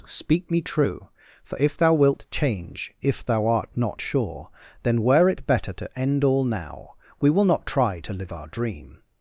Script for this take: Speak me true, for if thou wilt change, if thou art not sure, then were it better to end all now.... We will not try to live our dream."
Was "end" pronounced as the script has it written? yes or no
yes